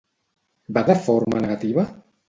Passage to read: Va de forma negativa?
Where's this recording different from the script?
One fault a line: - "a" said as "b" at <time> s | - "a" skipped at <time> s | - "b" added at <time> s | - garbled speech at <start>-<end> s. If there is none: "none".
none